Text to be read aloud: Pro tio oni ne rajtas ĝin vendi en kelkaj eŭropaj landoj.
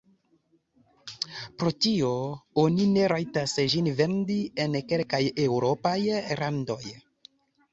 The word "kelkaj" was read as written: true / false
true